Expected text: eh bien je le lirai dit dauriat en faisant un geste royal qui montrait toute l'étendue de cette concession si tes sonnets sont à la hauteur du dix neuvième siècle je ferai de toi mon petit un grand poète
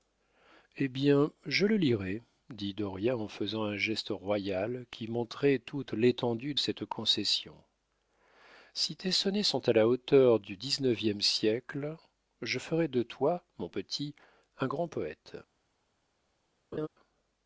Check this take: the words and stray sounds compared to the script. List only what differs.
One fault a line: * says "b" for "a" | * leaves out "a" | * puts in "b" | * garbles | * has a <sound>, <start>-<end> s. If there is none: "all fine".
* leaves out "de"
* has a laugh, 16.7-16.9 s